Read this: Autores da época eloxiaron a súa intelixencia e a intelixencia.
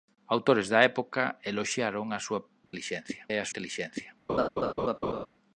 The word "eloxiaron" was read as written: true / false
true